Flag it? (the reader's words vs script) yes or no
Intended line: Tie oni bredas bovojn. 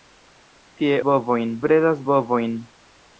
yes